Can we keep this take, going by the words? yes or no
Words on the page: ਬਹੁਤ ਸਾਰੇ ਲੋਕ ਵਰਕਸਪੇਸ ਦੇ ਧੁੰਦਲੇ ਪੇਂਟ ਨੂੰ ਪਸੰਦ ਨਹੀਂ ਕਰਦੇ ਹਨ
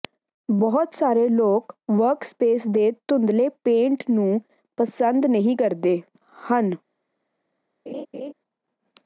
yes